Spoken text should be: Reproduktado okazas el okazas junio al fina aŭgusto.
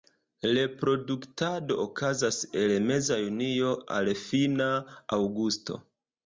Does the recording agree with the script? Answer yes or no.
no